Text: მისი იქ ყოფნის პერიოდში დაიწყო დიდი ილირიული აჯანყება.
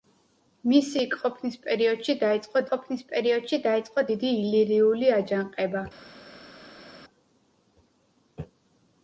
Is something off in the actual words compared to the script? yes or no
yes